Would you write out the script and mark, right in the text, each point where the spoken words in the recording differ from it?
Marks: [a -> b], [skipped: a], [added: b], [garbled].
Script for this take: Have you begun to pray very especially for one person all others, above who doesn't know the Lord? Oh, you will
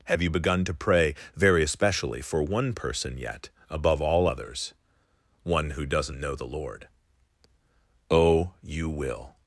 Have you begun to pray very especially for one person [added: yet above] all others, [above -> one] who doesn't know the Lord? Oh, you will